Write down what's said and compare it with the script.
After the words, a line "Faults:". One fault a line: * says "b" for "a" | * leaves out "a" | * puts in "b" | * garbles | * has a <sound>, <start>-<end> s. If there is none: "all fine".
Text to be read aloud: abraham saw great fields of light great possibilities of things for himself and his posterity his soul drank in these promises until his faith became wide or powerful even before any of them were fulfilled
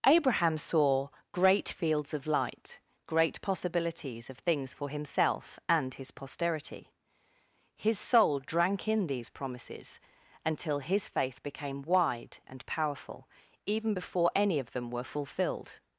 abraham saw great fields of light great possibilities of things for himself and his posterity his soul drank in these promises until his faith became wide and powerful even before any of them were fulfilled
Faults:
* says "and" for "or"